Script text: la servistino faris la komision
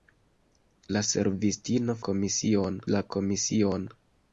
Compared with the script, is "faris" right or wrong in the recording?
wrong